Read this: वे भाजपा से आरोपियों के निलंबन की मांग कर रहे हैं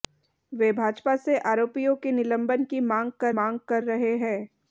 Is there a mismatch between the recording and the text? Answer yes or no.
yes